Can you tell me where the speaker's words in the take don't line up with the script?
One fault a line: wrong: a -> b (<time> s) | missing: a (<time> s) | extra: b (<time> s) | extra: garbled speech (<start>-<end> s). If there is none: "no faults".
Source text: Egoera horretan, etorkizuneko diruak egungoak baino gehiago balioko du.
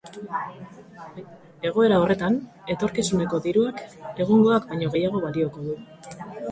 no faults